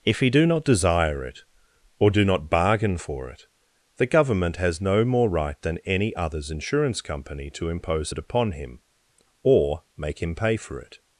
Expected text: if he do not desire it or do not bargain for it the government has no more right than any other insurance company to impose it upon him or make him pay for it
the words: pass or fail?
fail